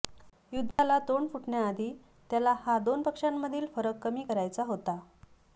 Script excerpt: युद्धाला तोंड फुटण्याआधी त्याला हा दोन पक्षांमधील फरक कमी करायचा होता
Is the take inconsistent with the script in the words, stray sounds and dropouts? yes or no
yes